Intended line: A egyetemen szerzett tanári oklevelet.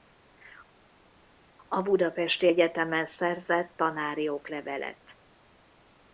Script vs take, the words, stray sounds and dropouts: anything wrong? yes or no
yes